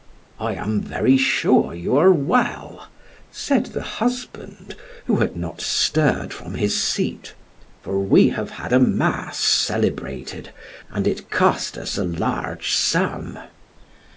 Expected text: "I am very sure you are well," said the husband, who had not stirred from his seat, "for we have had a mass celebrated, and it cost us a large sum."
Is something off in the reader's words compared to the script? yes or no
no